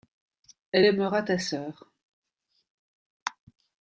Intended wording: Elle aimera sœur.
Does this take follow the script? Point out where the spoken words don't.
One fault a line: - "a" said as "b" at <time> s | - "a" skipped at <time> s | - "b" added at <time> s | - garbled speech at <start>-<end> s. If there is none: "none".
- "ta" added at 1.2 s